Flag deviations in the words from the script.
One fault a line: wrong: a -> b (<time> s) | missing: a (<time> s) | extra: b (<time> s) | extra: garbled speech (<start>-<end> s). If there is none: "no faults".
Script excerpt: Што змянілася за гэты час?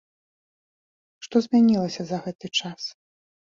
no faults